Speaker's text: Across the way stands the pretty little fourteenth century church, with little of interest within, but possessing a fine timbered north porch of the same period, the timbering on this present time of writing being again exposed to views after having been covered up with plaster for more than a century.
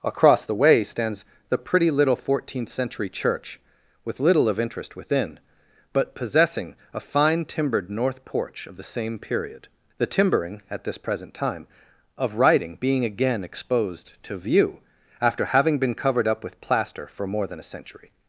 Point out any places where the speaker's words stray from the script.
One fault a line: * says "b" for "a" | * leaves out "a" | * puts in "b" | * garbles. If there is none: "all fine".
* says "at" for "on"
* says "view" for "views"